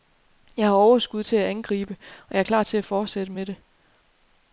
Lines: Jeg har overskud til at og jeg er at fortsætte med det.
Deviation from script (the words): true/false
true